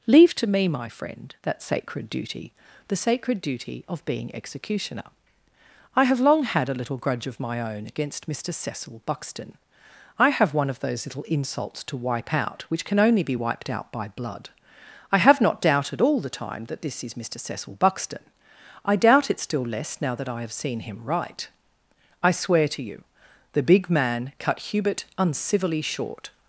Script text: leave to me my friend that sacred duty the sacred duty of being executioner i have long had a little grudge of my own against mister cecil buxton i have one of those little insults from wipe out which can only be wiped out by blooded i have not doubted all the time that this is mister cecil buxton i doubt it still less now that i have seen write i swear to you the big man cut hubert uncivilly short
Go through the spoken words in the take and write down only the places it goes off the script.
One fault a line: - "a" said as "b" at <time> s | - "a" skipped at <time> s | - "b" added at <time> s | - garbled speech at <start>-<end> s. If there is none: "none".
- "from" said as "to" at 11.8 s
- "blooded" said as "blood" at 14.1 s
- "him" added at 20.8 s